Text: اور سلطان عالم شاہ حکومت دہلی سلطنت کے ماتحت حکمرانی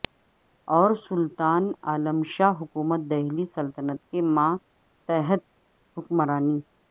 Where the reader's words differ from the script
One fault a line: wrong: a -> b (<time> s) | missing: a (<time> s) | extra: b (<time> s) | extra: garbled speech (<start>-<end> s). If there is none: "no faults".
no faults